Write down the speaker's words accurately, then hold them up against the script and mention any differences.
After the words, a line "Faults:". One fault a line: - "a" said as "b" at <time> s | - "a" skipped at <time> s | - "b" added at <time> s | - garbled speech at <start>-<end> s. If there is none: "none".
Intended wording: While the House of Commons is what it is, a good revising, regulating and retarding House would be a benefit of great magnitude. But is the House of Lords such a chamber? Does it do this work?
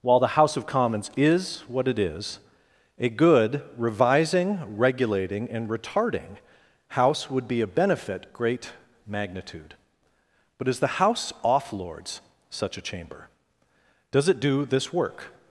While the House of Commons is what it is, a good revising, regulating and retarding House would be a benefit great magnitude. But is the House off Lords such a chamber? Does it do this work?
Faults:
- "of" skipped at 8.3 s
- "of" said as "off" at 11.4 s